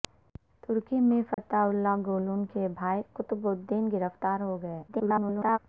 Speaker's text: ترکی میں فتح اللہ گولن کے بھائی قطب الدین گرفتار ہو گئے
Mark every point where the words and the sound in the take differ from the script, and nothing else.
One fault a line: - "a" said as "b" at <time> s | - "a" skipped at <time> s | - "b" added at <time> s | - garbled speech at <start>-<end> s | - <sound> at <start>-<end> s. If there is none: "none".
- dropout at 1.3-1.4 s
- garbled speech at 4.9-5.6 s